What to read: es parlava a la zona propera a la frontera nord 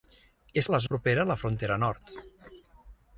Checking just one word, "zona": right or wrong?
wrong